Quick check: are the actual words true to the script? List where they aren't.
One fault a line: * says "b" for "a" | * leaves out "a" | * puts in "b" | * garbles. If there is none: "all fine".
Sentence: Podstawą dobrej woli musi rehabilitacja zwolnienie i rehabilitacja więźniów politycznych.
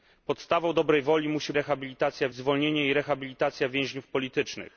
all fine